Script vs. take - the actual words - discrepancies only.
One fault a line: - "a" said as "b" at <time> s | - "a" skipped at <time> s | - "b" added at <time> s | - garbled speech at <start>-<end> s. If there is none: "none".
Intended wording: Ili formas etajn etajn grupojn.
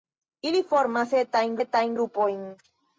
none